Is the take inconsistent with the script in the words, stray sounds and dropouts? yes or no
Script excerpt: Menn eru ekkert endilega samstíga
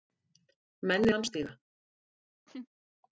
yes